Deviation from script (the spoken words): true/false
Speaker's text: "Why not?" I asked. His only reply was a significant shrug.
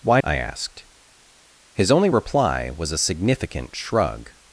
true